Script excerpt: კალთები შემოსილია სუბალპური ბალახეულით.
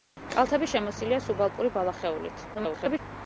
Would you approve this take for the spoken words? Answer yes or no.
no